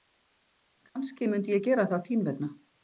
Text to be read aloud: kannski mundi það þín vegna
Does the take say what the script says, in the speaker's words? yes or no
no